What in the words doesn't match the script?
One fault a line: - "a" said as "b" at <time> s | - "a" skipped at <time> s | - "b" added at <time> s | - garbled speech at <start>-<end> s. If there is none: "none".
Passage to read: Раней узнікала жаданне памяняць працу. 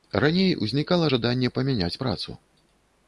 none